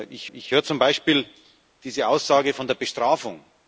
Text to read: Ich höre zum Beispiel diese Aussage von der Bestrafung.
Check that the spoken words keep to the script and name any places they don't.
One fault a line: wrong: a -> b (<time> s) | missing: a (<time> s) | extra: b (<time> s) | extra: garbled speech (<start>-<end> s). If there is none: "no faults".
extra: ich (0.3 s)